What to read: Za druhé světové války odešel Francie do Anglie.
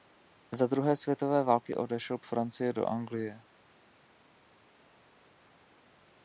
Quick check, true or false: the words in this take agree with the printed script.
true